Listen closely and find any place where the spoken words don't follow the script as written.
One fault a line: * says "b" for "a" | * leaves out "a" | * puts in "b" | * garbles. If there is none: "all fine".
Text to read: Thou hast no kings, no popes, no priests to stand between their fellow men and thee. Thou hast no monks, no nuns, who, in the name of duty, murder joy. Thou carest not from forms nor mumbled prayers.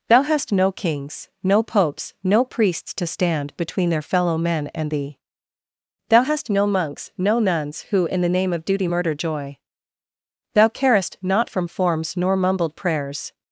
all fine